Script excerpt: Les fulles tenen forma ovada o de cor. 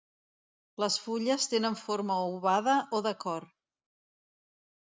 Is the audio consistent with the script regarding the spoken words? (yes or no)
yes